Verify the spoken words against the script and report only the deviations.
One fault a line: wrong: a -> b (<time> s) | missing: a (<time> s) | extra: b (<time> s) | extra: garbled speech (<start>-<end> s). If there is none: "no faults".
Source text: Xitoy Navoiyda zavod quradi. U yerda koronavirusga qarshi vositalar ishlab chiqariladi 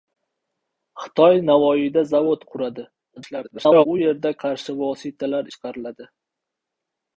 extra: garbled speech (3.2-3.9 s)
missing: koronavirusga (4.3 s)
missing: ishlab (5.5 s)